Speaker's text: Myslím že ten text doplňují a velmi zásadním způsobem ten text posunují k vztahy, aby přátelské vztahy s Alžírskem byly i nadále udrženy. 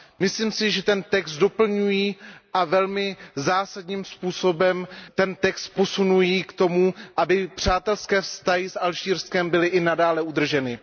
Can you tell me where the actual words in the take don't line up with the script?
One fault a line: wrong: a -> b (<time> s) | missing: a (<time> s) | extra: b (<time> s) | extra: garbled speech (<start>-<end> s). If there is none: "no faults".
extra: si (0.5 s)
wrong: vztahy -> tomu (6.5 s)